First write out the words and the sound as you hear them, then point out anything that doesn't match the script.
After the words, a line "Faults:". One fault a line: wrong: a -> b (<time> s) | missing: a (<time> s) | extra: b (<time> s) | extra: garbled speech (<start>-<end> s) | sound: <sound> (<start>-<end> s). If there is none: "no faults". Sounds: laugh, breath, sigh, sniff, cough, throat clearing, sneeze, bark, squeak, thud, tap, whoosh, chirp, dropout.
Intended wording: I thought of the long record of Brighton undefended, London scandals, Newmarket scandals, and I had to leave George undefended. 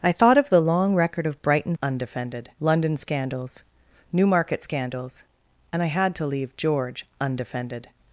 I thought of the long record of Brighton undefended, London scandals, Newmarket scandals, and I had to leave George undefended.
Faults:
no faults